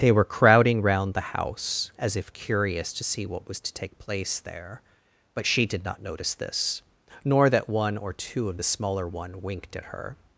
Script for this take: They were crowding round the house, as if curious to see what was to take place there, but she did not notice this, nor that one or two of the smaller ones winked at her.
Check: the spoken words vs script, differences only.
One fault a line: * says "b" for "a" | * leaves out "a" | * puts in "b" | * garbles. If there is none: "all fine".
* says "one" for "ones"